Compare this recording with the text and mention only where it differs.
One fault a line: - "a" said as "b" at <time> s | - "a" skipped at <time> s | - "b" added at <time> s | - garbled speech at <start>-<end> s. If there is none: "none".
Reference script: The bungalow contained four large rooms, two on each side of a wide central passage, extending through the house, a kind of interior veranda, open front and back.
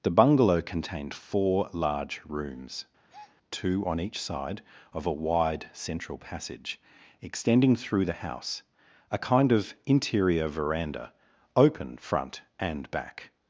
none